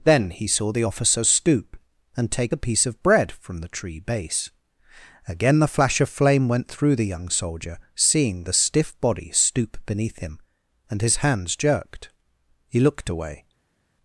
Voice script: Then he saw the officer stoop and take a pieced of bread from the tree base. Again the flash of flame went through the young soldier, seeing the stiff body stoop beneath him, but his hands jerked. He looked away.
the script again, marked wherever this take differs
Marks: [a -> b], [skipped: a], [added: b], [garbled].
Then he saw the officer stoop and take a [pieced -> piece] of bread from the tree base. Again the flash of flame went through the young soldier, seeing the stiff body stoop beneath him, [but -> and] his hands jerked. He looked away.